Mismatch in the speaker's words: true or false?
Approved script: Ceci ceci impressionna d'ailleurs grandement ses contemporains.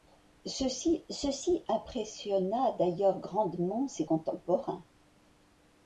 false